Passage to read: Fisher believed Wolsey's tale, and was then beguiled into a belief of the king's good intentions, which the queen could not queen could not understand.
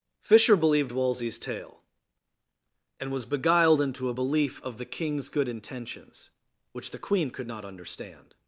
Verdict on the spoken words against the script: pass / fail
fail